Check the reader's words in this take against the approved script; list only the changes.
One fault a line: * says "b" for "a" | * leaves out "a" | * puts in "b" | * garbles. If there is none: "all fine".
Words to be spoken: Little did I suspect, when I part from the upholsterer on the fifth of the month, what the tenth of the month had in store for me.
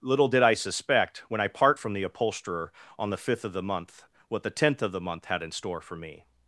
all fine